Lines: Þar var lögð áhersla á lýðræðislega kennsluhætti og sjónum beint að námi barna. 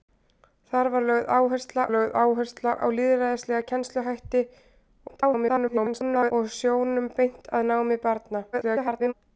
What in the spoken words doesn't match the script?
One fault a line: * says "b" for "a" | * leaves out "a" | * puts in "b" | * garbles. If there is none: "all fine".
* puts in "lögð áhersla"
* garbles
* garbles